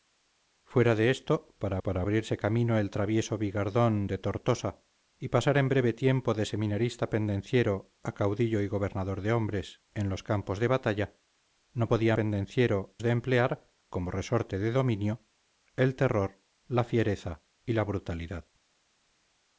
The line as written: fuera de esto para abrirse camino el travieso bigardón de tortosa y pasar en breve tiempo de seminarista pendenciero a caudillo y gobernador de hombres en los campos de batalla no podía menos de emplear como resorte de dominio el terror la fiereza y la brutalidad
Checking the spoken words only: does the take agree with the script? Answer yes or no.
no